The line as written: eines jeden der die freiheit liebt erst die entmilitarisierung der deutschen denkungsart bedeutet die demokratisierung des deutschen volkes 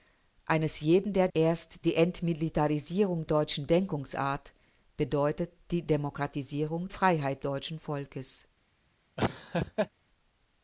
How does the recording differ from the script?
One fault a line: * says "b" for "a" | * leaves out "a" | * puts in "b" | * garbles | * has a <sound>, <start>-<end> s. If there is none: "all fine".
* leaves out "die freiheit liebt"
* leaves out "der"
* says "freiheit" for "des"
* has a laugh, 9.2-9.9 s